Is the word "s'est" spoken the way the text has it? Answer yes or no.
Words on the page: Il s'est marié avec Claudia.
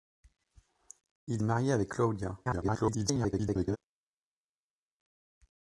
no